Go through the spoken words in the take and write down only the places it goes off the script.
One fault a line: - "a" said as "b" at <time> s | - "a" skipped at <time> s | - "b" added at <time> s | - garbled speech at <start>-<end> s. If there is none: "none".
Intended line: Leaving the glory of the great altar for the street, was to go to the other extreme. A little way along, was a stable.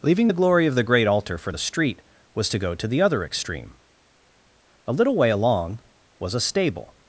none